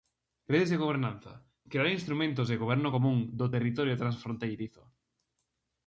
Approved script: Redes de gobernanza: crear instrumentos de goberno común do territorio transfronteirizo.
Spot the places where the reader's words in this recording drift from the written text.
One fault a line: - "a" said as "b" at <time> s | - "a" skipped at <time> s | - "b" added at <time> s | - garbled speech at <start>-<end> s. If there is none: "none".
none